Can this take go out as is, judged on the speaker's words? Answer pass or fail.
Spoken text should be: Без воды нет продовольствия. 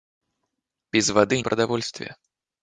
fail